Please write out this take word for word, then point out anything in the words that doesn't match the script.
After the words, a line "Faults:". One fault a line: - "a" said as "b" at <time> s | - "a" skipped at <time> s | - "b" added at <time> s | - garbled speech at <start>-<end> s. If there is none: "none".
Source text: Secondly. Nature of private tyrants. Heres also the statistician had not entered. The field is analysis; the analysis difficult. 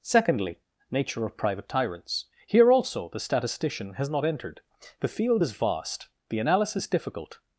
Secondly. Nature of private tyrants. Here also the statistician has not entered. The field is vast; the analysis difficult.
Faults:
- "Heres" said as "Here" at 2.5 s
- "had" said as "has" at 3.9 s
- "analysis" said as "vast" at 5.5 s